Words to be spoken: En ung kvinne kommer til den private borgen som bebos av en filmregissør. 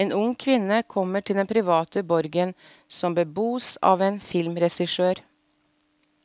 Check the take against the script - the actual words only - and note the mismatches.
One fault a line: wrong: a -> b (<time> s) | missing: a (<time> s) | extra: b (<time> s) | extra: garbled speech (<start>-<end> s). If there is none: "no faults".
no faults